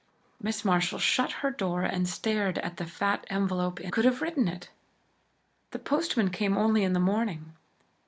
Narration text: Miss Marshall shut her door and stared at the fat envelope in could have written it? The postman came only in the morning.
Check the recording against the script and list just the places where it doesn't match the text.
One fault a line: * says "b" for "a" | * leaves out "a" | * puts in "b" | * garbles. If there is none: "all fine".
all fine